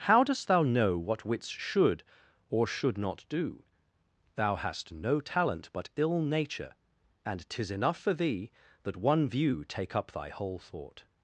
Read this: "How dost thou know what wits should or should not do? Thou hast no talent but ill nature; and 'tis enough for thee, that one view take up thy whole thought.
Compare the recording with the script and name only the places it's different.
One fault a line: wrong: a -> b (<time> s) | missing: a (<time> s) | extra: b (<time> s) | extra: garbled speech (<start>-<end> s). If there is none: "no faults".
no faults